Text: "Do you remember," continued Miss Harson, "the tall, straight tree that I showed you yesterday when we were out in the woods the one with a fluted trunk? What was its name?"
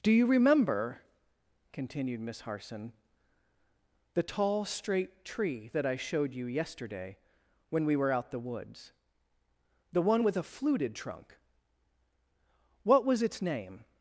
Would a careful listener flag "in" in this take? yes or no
yes